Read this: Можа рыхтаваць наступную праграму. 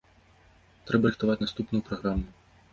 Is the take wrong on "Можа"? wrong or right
wrong